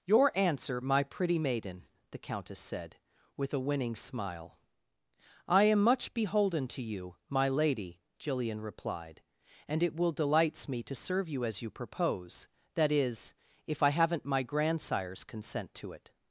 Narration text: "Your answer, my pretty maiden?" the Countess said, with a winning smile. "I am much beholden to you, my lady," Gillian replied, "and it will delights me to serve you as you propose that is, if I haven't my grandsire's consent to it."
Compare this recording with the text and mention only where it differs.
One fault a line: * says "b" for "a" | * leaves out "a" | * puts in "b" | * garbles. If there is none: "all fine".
all fine